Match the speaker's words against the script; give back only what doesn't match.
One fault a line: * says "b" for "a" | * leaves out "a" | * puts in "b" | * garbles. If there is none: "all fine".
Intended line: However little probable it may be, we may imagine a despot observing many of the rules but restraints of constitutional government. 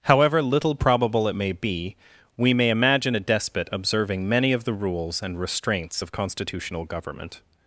* says "and" for "but"